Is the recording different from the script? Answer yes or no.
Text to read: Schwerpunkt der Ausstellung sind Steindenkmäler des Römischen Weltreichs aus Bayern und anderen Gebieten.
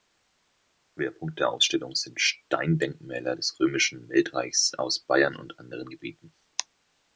no